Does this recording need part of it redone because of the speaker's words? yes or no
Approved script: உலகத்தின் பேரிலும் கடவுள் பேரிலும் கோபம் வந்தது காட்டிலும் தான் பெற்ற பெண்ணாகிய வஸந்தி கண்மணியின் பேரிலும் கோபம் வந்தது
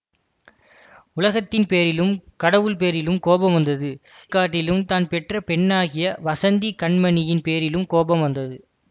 no